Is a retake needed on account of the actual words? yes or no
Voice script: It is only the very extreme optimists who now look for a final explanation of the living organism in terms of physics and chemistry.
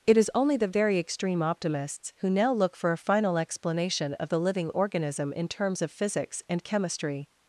no